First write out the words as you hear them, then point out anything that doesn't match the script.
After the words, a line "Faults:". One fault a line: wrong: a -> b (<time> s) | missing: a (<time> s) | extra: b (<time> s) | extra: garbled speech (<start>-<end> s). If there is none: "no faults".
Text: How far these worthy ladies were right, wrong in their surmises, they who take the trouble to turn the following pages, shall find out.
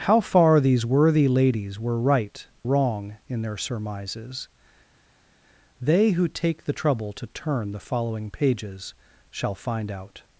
How far these worthy ladies were right, wrong in their surmises, they who take the trouble to turn the following pages, shall find out.
Faults:
no faults